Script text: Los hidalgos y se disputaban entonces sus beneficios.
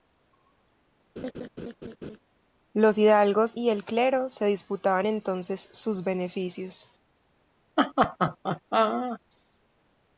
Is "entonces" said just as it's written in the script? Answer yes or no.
yes